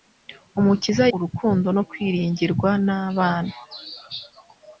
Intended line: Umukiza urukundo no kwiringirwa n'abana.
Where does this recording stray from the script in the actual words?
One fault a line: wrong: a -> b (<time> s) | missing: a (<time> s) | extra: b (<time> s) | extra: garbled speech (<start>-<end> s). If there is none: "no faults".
no faults